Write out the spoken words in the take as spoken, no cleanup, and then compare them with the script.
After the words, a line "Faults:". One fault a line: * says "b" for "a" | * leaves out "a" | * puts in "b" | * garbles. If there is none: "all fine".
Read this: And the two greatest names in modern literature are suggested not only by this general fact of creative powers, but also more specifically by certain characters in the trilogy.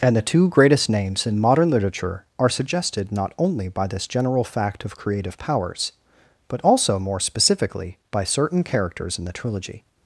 And the two greatest names in modern literature are suggested not only by this general fact of creative powers, but also more specifically by certain characters in the trilogy.
Faults:
all fine